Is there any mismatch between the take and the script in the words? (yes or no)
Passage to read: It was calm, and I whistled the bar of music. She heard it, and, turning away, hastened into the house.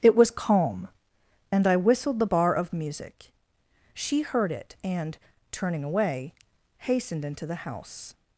no